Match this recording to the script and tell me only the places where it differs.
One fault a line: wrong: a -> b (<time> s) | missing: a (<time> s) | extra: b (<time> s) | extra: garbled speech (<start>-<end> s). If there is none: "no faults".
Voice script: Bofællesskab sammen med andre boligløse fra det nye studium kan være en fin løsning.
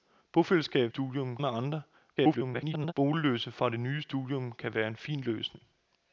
wrong: sammen -> studium (0.9 s)
extra: garbled speech (2.2-2.9 s)